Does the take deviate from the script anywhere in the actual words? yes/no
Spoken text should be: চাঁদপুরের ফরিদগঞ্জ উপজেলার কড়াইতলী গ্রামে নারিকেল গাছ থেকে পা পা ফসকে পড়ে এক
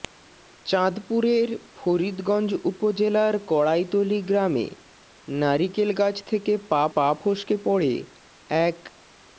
no